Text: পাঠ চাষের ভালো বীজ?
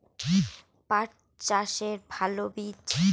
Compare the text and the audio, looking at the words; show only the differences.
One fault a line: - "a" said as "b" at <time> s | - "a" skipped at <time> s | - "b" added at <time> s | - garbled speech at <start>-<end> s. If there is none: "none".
none